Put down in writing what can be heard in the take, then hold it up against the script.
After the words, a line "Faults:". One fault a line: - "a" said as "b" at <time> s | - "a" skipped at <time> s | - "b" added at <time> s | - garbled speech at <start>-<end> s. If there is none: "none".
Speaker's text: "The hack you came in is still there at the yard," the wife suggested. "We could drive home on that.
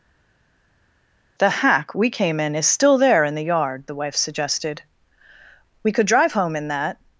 "The hack we came in is still there in the yard," the wife suggested. "We could drive home in that.
Faults:
- "you" said as "we" at 1.9 s
- "at" said as "in" at 3.2 s
- "on" said as "in" at 6.6 s